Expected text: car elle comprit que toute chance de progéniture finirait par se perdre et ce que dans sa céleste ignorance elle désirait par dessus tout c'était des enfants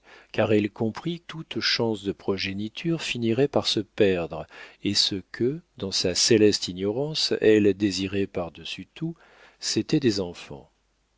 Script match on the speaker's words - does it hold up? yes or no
no